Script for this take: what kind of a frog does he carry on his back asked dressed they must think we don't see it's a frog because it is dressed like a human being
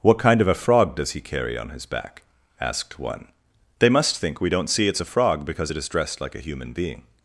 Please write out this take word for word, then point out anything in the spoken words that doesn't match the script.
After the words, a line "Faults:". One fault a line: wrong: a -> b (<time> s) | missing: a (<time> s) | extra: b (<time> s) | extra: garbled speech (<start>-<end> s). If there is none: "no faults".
what kind of a frog does he carry on his back asked one they must think we don't see it's a frog because it is dressed like a human being
Faults:
wrong: dressed -> one (3.0 s)